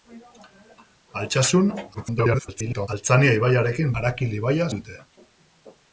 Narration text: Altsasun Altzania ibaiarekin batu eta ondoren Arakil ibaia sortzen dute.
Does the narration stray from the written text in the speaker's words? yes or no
yes